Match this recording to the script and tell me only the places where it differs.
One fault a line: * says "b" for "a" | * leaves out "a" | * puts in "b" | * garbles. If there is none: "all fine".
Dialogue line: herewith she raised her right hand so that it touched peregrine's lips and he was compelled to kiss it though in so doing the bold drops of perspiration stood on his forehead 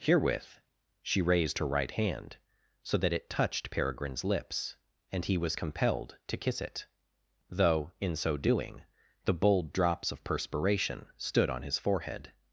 all fine